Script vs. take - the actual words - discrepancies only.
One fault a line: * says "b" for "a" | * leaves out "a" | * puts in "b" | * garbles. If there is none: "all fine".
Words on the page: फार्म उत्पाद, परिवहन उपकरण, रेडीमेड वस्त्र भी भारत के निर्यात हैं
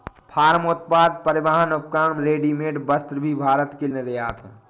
all fine